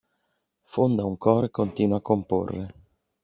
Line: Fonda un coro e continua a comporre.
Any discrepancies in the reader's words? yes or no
no